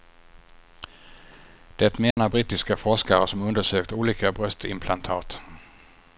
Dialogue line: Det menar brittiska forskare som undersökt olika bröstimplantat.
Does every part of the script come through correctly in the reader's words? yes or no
yes